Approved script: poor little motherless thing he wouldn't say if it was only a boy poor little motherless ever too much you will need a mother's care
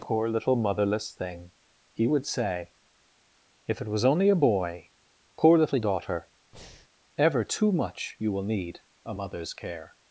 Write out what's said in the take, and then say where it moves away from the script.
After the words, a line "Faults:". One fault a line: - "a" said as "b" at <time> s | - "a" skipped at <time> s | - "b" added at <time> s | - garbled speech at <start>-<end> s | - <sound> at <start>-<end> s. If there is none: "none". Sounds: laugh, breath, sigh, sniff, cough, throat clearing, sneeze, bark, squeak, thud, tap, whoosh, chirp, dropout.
poor little motherless thing he would say if it was only a boy poor little daughter ever too much you will need a mother's care
Faults:
- "wouldn't" said as "would" at 2.1 s
- "motherless" said as "daughter" at 5.8 s
- breath at 6.5-6.9 s